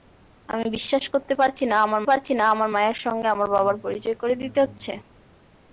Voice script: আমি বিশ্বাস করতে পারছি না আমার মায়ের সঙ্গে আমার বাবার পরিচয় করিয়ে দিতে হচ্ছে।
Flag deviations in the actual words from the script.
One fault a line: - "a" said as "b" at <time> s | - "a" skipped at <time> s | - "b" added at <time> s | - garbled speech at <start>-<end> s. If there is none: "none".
- "পারছি না আমার" added at 2.1 s